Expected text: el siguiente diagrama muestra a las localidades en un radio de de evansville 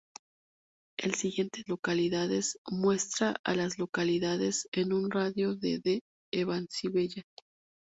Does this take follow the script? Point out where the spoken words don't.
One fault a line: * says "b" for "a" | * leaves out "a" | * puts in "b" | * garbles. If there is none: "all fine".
* says "localidades" for "diagrama"